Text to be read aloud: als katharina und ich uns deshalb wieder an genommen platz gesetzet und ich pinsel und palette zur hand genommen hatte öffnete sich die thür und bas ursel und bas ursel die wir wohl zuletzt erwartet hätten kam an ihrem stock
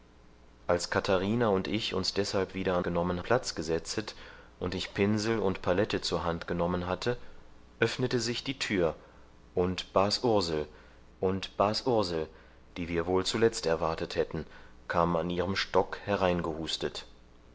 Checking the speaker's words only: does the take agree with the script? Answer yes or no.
yes